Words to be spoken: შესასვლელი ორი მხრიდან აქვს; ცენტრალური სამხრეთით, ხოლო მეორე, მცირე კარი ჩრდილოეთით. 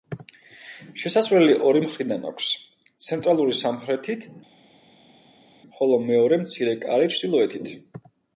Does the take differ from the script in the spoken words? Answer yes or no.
no